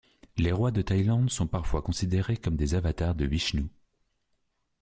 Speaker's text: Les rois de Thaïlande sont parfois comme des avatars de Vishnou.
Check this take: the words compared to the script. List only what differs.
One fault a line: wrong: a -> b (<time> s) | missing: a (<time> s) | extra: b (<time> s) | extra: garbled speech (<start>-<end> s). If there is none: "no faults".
extra: considérés (1.8 s)